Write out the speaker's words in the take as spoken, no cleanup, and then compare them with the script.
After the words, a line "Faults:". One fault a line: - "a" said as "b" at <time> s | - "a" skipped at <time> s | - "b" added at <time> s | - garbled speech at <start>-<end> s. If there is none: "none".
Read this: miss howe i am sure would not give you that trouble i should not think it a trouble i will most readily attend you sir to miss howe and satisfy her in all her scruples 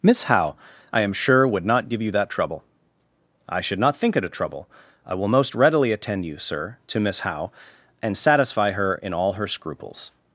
miss howe i am sure would not give you that trouble i should not think it a trouble i will most readily attend you sir to miss howe and satisfy her in all her scruples
Faults:
none